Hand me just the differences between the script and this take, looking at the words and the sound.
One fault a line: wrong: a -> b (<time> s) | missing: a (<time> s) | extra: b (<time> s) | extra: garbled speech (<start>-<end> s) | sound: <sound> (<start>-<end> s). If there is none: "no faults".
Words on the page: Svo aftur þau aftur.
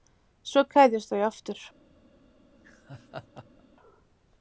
wrong: aftur -> kveðjast (0.7 s)
sound: laugh (2.5-3.6 s)